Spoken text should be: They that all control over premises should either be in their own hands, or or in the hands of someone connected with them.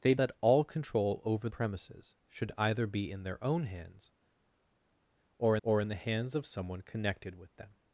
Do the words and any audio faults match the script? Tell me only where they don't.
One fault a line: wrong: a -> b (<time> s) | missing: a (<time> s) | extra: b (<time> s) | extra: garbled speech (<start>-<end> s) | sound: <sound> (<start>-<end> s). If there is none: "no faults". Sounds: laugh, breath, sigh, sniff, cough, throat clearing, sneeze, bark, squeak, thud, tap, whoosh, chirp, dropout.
no faults